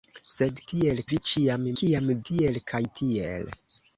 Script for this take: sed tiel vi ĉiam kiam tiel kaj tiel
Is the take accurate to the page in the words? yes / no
yes